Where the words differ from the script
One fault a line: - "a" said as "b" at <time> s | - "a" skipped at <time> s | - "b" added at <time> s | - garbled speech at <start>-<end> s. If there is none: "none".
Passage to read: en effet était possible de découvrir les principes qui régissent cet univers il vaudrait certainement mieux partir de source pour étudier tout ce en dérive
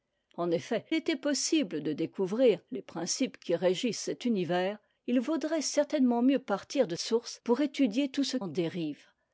none